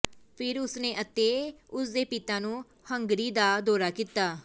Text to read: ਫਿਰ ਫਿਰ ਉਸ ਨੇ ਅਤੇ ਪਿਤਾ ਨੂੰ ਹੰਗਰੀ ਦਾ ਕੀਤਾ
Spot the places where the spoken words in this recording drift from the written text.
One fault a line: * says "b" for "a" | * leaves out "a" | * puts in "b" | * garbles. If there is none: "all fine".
* leaves out "ਫਿਰ"
* puts in "ਉਸ ਦੇ"
* puts in "ਦੌਰਾ"